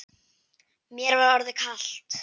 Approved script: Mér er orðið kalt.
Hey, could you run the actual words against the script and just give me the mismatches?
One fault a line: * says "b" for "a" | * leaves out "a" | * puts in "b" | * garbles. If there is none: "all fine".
* says "var" for "er"